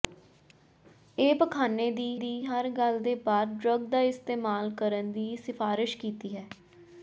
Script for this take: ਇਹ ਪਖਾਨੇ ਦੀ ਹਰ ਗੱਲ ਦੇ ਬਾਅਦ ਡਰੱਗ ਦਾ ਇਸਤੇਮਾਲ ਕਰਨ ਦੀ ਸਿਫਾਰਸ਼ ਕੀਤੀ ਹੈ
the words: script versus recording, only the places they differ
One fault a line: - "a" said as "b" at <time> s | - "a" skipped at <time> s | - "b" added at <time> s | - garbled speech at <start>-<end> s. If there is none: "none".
- "ਦੀ" added at 2.1 s